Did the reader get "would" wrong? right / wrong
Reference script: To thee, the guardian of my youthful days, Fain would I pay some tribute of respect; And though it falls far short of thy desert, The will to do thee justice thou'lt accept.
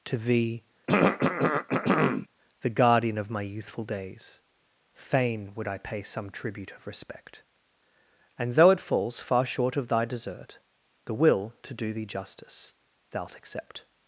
right